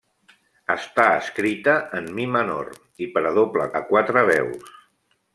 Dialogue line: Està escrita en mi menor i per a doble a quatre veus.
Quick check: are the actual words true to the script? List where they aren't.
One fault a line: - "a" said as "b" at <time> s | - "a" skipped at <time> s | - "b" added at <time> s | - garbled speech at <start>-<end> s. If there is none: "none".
none